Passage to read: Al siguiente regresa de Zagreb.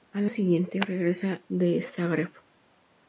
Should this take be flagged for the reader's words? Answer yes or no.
no